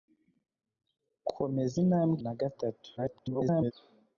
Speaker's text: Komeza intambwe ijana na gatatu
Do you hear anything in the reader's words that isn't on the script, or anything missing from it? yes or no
yes